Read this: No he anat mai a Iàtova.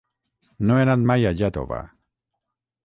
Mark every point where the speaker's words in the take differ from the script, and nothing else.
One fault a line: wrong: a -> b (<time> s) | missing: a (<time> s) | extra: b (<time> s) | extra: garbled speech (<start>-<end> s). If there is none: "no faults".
no faults